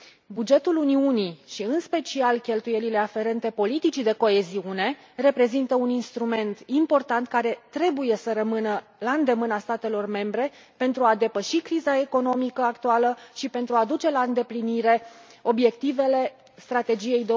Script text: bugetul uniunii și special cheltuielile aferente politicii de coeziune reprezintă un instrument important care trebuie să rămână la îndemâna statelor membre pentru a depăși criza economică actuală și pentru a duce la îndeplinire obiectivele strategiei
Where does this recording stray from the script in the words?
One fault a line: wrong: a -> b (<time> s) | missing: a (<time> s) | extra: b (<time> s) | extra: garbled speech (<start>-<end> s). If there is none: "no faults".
extra: în (1.6 s)